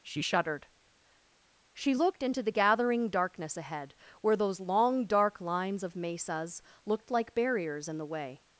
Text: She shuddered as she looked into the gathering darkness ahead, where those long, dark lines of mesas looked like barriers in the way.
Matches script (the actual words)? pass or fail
fail